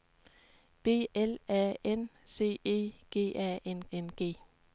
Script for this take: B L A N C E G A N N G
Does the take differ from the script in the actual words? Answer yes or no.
no